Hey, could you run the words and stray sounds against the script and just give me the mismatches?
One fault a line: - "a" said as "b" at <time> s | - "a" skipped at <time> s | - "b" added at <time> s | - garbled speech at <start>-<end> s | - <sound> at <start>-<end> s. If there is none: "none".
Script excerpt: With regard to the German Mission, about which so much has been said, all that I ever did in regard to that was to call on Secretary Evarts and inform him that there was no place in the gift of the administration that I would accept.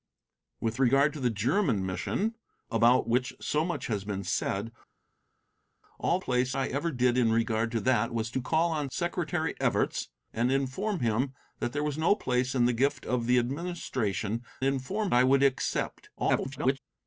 - "that" said as "place" at 6.2 s
- "that" said as "inform" at 14.6 s
- garbled speech at 16.2-16.8 s